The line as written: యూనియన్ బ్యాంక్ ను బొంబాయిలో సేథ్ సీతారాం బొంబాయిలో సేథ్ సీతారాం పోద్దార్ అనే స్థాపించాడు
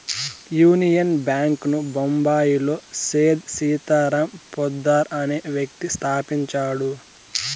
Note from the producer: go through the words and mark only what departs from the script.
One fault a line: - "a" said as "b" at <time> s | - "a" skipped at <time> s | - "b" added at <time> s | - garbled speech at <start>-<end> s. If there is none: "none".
- "బొంబాయిలో సేథ్ సీతారాం" skipped at 4.3 s
- "వ్యక్తి" added at 5.6 s